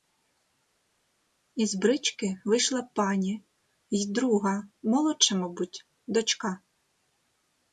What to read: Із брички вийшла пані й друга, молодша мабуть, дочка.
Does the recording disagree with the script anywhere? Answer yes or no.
no